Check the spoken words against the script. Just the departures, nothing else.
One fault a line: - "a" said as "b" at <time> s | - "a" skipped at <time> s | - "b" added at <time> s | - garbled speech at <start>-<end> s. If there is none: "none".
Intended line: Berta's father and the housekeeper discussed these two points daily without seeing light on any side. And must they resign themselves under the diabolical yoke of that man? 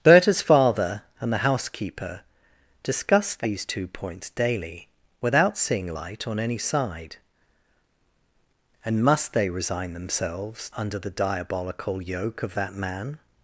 none